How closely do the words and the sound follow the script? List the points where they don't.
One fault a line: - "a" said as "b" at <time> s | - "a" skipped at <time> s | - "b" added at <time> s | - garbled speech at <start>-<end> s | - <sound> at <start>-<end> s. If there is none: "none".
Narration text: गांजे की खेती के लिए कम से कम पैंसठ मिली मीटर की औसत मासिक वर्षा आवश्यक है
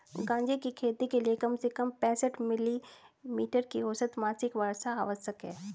none